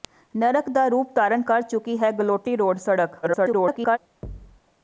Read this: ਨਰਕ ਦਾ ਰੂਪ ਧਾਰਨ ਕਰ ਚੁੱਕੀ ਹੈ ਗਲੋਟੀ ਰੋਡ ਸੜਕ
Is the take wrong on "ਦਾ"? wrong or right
right